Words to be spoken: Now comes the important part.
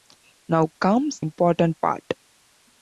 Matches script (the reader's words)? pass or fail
fail